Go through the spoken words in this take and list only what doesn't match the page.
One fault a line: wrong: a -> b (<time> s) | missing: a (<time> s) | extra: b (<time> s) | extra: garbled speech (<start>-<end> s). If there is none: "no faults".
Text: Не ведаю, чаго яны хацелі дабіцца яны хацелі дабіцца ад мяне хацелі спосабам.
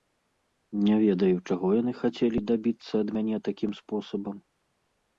missing: яны хацелі дабіцца (2.9 s)
wrong: хацелі -> такім (3.5 s)